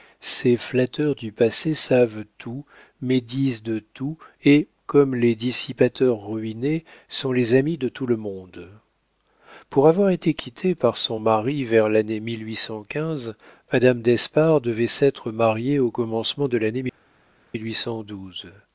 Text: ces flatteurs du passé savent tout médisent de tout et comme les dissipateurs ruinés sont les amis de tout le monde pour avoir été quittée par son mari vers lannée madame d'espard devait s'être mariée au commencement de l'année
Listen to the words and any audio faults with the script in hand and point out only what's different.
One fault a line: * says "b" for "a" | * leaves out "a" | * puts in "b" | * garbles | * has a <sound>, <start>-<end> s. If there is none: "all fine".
all fine